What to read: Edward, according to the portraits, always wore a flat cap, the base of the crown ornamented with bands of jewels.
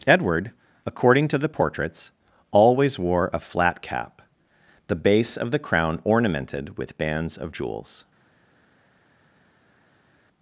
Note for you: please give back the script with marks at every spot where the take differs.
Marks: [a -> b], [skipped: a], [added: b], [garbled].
Edward, according to the portraits, always wore a flat cap, the base of the crown ornamented with bands of jewels.